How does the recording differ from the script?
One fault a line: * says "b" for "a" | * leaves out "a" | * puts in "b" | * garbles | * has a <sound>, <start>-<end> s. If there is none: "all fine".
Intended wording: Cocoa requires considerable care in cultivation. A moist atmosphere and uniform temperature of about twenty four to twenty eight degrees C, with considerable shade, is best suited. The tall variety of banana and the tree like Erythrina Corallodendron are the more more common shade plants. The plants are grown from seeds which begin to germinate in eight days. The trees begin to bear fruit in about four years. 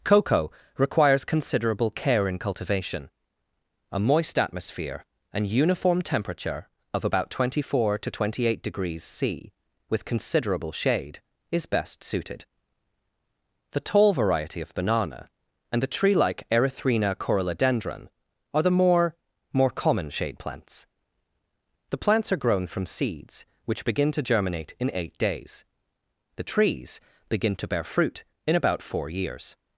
all fine